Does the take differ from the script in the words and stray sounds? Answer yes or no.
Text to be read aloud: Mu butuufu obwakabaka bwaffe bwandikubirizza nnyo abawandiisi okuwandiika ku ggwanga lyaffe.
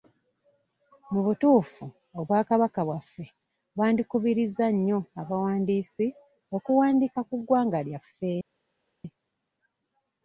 no